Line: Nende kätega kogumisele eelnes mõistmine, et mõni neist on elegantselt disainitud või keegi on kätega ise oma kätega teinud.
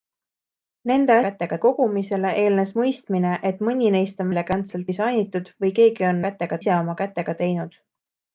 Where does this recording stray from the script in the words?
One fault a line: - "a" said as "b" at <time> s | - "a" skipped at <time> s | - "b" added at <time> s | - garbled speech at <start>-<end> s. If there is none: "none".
none